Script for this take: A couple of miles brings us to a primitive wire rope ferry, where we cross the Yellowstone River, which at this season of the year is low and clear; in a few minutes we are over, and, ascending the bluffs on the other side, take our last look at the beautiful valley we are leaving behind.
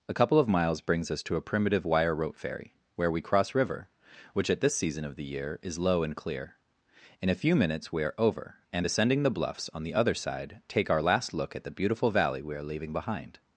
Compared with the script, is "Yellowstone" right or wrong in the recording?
wrong